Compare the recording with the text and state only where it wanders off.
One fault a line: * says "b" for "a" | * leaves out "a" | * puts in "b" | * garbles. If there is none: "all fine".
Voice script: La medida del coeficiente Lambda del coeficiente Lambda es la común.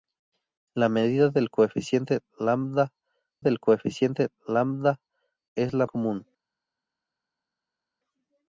all fine